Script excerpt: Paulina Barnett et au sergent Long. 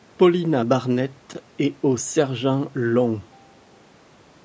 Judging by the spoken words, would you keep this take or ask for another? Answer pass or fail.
pass